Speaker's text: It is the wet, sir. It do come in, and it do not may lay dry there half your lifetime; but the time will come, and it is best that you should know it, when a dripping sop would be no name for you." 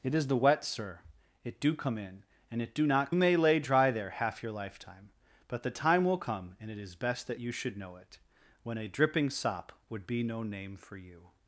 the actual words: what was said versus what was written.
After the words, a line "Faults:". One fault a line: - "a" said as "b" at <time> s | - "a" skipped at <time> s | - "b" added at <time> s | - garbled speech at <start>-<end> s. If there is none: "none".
It is the wet, sir. It do come in, and it do not may lay dry there half your lifetime; but the time will come, and it is best that you should know it, when a dripping sop would be no name for you."
Faults:
none